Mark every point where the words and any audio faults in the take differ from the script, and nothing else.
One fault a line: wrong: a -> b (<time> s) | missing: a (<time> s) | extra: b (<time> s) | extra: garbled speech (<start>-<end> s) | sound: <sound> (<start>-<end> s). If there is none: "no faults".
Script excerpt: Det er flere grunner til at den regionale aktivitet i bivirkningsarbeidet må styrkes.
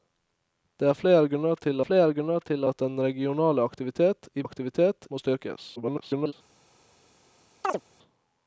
extra: flere grunner til (1.9 s)
wrong: bivirkningsarbeidet -> aktivitet (4.4 s)
extra: garbled speech (5.8-6.3 s)
sound: chirp (7.6-7.8 s)